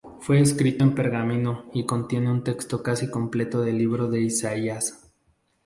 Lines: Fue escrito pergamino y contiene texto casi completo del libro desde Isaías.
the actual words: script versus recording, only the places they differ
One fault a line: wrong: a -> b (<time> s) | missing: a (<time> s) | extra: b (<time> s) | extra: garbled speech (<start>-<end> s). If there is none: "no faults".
extra: en (0.8 s)
extra: un (2.3 s)
wrong: desde -> de (4.1 s)